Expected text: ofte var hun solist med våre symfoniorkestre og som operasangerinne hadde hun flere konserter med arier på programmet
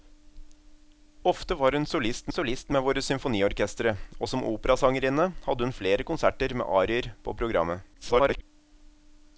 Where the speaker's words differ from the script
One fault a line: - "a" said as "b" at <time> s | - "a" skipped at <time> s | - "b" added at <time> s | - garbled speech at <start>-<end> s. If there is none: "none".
- "solist" added at 2.4 s
- garbled speech at 7.9-8.4 s